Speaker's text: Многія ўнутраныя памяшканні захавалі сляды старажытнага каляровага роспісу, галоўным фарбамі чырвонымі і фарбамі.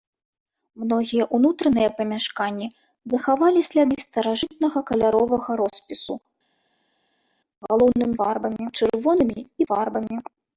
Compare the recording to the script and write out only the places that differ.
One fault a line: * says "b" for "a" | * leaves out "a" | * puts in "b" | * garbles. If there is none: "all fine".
all fine